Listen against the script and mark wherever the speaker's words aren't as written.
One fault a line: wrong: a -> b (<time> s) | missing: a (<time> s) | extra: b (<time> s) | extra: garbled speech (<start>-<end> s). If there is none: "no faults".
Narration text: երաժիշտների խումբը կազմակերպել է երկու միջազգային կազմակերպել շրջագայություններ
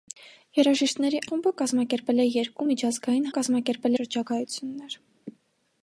no faults